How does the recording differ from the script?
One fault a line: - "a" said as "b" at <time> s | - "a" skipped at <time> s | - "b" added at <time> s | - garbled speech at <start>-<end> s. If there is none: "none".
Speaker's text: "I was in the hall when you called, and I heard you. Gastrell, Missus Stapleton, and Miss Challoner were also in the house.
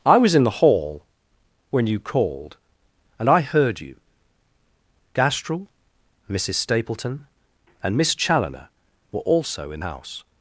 - "the" skipped at 9.8 s